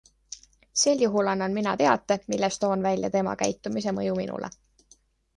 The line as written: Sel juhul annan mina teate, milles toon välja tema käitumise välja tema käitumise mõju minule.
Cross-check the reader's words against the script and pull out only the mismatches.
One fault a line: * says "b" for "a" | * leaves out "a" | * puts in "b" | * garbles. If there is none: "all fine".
* leaves out "välja tema käitumise"